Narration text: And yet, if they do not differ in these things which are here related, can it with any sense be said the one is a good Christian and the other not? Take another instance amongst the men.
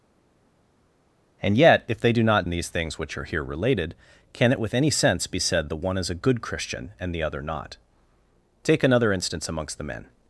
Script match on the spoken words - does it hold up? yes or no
no